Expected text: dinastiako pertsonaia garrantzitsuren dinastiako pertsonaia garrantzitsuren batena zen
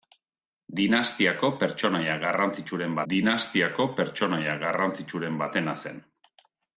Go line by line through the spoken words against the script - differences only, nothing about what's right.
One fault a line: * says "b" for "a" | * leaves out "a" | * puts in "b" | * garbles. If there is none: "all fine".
all fine